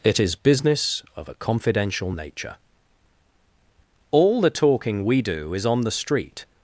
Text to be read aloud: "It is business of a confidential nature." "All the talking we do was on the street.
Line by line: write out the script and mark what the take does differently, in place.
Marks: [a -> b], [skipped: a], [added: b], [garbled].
"It is business of a confidential nature." "All the talking we do [was -> is] on the street.